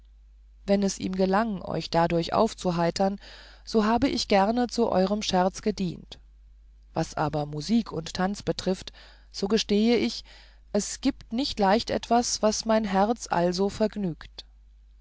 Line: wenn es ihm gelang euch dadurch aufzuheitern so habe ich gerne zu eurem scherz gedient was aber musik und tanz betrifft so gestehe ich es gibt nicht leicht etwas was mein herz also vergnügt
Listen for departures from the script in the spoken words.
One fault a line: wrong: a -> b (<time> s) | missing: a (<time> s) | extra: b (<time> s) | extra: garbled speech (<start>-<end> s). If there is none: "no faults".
no faults